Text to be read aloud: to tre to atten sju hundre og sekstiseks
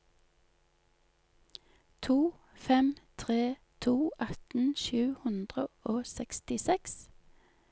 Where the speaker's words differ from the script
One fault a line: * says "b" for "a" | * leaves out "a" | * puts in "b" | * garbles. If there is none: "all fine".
* puts in "fem"